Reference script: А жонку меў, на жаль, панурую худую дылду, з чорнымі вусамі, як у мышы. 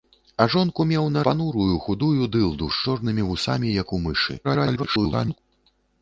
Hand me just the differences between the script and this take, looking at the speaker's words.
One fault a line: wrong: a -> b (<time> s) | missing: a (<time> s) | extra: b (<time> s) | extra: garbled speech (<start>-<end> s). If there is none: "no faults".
missing: жаль (1.2 s)
extra: garbled speech (4.4-5.4 s)